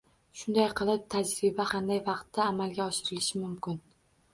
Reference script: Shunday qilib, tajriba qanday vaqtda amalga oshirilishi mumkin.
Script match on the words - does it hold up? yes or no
yes